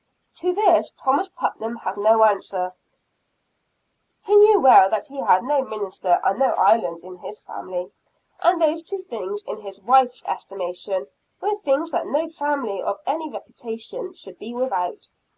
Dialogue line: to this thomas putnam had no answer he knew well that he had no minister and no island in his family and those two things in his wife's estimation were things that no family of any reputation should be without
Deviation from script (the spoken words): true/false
false